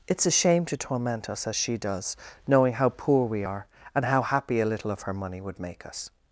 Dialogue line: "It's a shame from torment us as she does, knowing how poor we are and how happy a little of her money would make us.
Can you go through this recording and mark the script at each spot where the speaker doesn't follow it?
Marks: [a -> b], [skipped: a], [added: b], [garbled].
"It's a shame [from -> to] torment us as she does, knowing how poor we are and how happy a little of her money would make us.